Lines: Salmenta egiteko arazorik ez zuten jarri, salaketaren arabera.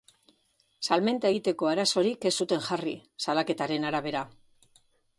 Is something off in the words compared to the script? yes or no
no